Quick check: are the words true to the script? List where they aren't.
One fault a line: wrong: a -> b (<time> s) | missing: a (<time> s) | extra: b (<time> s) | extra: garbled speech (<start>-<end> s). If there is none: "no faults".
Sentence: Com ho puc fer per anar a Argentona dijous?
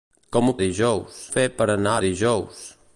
wrong: puc -> dijous (0.6 s)
missing: Argentona (2.0 s)